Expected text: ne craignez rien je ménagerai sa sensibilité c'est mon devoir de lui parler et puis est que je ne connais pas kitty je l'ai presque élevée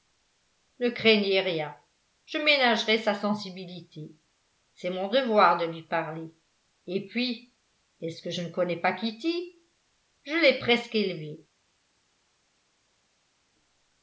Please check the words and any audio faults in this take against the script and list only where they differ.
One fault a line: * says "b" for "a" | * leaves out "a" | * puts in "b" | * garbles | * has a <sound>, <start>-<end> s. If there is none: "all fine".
* puts in "ce"